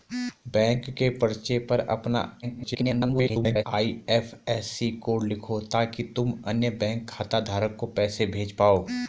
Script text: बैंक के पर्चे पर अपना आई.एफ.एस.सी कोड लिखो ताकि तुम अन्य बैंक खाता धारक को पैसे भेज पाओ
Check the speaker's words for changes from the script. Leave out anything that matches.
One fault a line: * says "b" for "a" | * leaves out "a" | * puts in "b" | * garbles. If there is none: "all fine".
* garbles